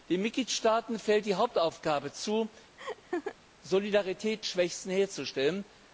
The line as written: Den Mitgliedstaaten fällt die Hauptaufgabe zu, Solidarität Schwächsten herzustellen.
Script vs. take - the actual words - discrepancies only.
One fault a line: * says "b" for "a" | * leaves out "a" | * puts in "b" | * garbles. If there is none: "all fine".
all fine